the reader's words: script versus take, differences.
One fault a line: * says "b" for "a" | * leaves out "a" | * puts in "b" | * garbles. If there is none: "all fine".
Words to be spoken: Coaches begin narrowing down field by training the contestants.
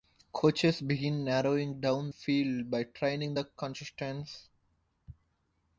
all fine